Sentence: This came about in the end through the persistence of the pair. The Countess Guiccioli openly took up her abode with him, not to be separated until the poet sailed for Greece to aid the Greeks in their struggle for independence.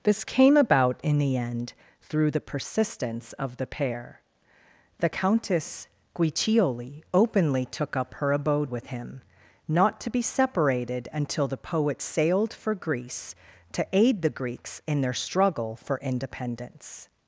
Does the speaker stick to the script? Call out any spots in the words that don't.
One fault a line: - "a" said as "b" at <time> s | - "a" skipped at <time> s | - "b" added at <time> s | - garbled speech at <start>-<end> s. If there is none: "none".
none